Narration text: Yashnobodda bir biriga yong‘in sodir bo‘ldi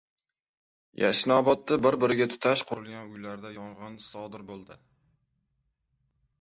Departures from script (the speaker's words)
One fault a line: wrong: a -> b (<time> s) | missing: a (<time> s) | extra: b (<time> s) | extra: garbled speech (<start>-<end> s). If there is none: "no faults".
extra: tutash qurilgan uylarda (2.3 s)